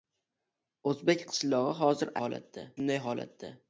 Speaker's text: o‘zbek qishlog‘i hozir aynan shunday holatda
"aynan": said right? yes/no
no